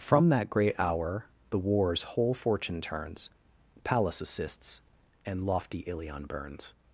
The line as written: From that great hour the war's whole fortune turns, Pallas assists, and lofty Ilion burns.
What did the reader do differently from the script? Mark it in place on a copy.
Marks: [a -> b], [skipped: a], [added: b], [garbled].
From that great hour the war's whole fortune turns, Pallas assists, and lofty Ilion burns.